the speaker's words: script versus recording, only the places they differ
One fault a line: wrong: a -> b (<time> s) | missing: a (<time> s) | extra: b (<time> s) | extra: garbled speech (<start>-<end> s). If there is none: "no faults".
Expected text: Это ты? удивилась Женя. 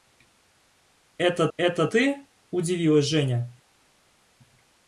extra: это (1.6 s)